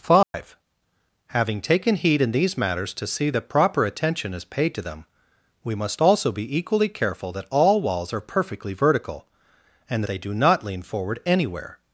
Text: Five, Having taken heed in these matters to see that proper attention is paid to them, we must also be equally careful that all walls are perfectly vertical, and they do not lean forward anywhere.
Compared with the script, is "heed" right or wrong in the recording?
right